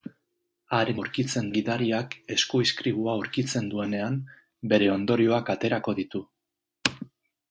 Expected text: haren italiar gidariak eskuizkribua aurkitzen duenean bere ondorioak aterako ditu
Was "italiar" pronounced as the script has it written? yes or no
no